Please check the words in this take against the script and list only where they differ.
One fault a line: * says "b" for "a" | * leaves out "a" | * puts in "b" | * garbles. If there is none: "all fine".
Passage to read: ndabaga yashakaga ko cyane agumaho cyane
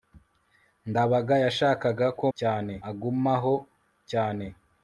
all fine